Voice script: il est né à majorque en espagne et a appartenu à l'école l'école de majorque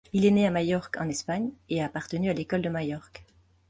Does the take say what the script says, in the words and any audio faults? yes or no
no